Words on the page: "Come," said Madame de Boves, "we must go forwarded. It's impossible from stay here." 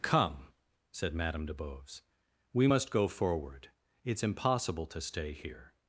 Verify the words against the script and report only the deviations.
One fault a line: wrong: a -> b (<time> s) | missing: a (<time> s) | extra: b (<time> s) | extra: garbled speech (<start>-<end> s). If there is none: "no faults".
wrong: forwarded -> forward (3.1 s)
wrong: from -> to (4.9 s)